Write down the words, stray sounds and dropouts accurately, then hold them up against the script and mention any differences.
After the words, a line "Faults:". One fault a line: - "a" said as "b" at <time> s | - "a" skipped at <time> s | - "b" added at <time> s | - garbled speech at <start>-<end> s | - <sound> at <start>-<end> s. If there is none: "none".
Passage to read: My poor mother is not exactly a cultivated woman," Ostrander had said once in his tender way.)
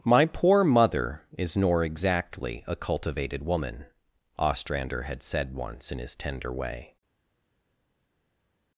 My poor mother is nor exactly a cultivated woman," Ostrander had said once in his tender way.)
Faults:
- "not" said as "nor" at 1.6 s